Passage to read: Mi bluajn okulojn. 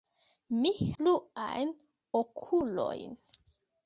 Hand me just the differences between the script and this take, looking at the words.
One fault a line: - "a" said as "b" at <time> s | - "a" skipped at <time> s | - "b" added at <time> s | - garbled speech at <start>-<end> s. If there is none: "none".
none